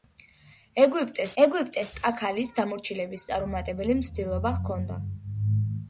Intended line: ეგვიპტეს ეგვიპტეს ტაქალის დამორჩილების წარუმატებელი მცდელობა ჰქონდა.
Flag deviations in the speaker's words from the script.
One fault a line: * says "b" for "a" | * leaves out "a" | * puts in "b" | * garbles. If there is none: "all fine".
all fine